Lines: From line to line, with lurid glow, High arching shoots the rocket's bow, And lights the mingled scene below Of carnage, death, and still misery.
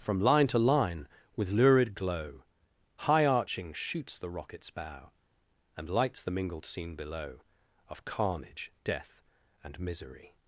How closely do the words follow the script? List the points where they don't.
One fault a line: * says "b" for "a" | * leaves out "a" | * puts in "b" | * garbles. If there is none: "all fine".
* leaves out "still"